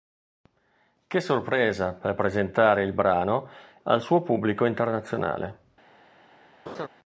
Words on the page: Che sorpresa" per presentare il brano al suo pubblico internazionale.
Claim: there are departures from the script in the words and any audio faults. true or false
true